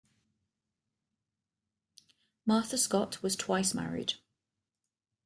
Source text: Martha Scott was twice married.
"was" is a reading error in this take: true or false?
false